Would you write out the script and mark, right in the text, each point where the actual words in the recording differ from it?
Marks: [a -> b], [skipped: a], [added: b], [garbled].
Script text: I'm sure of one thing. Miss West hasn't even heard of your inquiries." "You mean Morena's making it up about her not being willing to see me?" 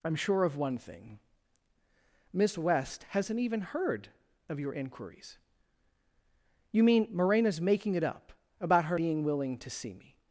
I'm sure of one thing. Miss West hasn't even heard of your inquiries." "You mean Morena's making it up about her [skipped: not] being willing to see me?"